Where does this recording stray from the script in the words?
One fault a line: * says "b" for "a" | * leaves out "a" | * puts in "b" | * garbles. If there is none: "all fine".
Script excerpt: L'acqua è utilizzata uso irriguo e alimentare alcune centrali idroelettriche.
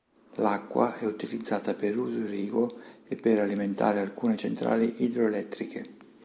* puts in "per"
* puts in "per"